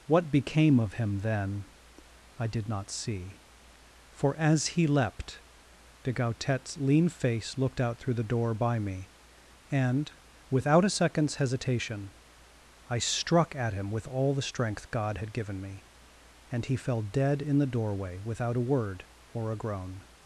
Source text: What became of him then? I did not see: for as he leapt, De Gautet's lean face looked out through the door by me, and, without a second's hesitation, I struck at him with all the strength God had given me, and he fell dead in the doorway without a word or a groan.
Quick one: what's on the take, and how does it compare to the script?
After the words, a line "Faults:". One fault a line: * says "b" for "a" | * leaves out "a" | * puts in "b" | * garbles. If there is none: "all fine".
What became of him then? I did not see: for as he leapt, De Gautet's lean face looked out through the door by me, and, without a second's hesitation, I struck at him with all the strength God had given me, and he fell dead in the doorway without a word or a groan.
Faults:
all fine